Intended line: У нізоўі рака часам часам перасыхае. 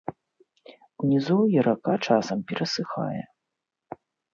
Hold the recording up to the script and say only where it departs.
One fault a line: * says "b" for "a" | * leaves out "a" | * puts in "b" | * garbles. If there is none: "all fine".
* leaves out "часам"